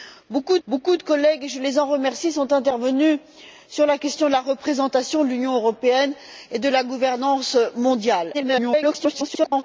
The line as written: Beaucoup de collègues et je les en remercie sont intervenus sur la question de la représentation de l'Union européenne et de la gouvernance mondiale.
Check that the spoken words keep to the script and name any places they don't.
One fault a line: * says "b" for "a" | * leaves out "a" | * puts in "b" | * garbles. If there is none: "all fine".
* puts in "beaucoup"
* garbles